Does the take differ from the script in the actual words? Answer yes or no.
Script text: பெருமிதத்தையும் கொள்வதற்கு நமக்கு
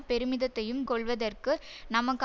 no